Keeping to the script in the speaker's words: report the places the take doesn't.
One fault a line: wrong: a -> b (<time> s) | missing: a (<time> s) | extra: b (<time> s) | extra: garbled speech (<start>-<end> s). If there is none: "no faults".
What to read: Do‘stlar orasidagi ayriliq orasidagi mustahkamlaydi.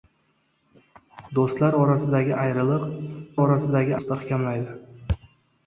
no faults